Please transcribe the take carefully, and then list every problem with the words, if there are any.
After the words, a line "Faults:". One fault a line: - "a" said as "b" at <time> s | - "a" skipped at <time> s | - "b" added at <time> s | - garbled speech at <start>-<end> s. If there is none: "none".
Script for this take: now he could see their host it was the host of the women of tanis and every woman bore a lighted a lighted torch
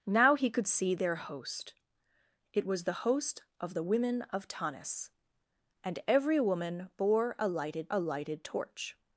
now he could see their host it was the host of the women of tanis and every woman bore a lighted a lighted torch
Faults:
none